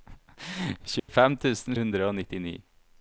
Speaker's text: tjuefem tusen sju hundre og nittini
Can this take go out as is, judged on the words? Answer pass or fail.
fail